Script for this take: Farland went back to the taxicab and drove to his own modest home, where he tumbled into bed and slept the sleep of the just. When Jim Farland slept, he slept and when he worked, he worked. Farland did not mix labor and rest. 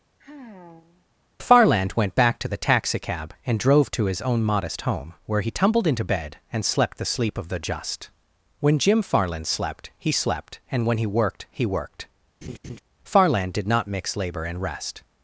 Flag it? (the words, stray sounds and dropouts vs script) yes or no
yes